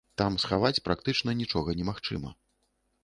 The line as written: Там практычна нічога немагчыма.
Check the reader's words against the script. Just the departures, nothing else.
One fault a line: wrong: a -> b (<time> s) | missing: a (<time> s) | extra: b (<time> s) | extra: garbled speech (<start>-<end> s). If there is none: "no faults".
extra: схаваць (0.4 s)